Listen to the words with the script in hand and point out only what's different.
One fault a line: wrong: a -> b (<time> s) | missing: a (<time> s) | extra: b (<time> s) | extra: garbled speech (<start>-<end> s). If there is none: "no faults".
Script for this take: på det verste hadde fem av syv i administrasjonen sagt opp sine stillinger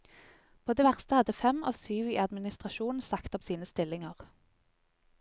no faults